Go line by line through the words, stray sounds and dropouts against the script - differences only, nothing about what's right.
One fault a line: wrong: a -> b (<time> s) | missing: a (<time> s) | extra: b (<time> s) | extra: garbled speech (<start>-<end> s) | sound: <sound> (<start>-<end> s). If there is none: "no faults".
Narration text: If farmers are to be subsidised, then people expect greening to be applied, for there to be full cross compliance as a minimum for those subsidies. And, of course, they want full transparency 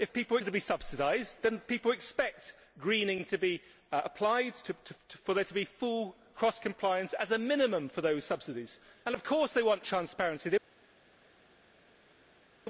wrong: farmers -> people (0.0 s)
missing: full (9.8 s)